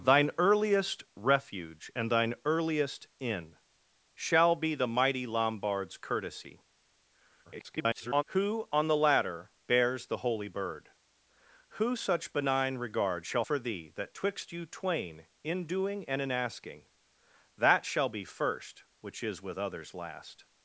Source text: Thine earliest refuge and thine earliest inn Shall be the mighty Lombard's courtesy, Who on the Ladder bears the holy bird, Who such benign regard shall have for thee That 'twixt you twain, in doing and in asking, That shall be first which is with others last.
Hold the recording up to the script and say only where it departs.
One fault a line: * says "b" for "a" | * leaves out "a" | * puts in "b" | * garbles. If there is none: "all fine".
* garbles
* leaves out "have"